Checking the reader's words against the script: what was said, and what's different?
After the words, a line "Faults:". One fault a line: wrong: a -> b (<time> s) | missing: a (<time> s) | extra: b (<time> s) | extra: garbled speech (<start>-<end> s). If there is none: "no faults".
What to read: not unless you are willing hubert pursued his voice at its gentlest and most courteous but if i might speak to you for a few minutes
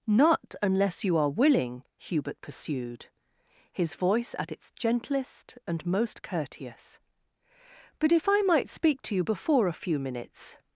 not unless you are willing hubert pursued his voice at its gentlest and most courteous but if i might speak to you before a few minutes
Faults:
wrong: for -> before (9.2 s)